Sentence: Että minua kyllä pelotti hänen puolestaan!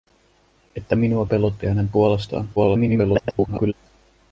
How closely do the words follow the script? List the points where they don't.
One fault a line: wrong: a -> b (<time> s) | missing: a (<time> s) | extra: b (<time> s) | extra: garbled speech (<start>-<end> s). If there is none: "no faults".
missing: kyllä (1.2 s)
extra: garbled speech (2.6-3.7 s)